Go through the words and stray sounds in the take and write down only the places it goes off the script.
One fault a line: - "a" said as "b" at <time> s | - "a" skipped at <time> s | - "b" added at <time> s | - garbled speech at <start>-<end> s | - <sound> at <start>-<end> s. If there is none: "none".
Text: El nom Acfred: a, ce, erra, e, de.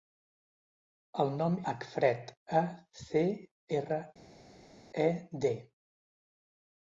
none